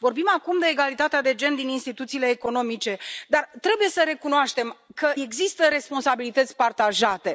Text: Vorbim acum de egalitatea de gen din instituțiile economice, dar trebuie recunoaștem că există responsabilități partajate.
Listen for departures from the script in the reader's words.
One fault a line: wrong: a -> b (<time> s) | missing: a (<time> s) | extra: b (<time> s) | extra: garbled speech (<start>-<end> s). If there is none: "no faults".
extra: să (3.9 s)